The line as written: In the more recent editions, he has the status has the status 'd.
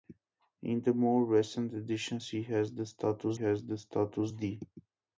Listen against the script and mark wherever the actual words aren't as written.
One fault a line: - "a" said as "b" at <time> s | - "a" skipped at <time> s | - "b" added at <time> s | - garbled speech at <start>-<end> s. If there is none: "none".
none